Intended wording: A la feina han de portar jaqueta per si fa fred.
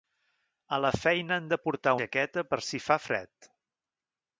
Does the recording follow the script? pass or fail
pass